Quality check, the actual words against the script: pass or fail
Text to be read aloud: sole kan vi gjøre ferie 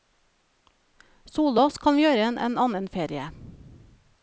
fail